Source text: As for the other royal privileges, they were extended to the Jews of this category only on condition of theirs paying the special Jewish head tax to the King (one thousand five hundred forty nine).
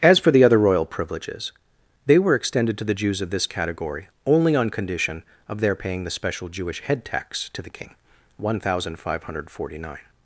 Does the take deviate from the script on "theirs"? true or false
true